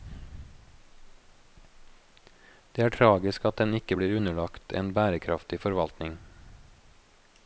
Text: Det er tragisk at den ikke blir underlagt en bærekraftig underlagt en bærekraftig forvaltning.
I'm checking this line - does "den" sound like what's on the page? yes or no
yes